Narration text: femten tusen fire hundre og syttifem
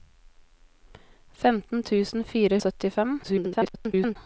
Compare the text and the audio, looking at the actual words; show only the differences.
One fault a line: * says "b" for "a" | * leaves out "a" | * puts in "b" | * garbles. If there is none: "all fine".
* leaves out "hundre"
* garbles